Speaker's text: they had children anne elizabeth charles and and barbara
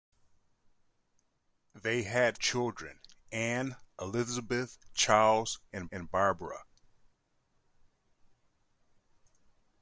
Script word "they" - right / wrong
right